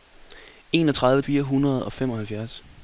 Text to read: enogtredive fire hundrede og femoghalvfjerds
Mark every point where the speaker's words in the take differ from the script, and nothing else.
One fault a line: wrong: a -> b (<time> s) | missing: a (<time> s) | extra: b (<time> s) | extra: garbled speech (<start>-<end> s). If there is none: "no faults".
no faults